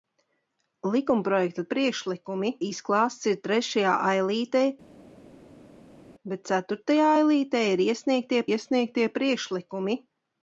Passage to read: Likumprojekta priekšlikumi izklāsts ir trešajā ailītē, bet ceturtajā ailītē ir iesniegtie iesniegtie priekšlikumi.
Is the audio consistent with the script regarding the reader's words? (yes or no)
yes